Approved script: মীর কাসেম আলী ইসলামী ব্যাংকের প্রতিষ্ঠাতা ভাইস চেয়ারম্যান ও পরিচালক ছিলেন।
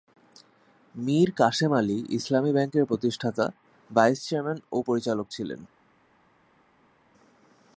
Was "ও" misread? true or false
false